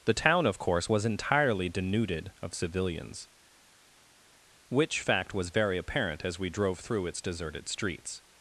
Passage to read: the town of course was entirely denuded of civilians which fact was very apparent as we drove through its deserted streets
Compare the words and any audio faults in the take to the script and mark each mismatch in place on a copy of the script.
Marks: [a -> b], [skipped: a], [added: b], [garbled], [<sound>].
the town of course was entirely denuded of civilians which fact was very apparent as we drove through its deserted streets